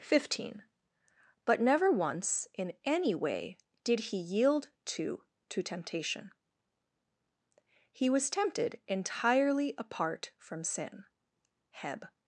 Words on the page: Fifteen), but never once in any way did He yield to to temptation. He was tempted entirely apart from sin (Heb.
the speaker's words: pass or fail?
pass